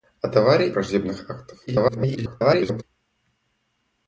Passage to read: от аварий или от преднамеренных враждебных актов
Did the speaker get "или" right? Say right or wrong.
wrong